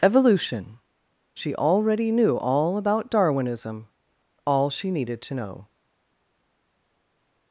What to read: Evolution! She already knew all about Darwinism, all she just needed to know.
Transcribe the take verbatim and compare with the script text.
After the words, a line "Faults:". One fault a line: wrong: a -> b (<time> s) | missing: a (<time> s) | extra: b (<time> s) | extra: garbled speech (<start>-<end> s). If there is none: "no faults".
Evolution! She already knew all about Darwinism, all she needed to know.
Faults:
missing: just (4.9 s)